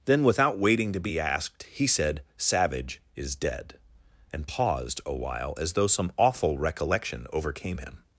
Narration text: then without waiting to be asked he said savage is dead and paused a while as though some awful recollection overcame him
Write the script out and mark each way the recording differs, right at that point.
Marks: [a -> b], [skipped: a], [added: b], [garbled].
then without waiting to be asked he said savage is dead and paused a while as though some awful recollection overcame him